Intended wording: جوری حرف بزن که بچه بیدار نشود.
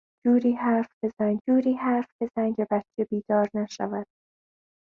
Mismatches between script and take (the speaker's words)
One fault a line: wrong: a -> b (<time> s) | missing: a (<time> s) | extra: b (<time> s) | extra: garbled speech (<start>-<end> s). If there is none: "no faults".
extra: جوری حرف بزن (1.5 s)